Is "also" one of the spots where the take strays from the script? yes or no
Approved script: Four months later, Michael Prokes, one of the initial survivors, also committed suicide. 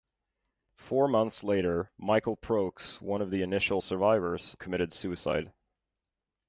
yes